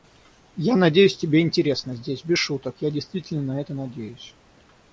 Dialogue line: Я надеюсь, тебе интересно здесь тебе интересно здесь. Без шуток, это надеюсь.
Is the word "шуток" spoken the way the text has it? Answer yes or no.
no